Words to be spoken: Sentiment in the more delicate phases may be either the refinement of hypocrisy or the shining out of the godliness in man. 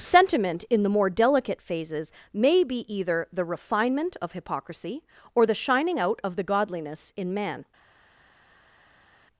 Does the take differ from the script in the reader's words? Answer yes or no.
no